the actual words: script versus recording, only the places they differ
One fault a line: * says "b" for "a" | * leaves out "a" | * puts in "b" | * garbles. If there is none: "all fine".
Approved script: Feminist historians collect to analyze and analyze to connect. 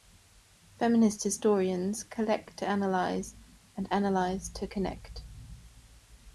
all fine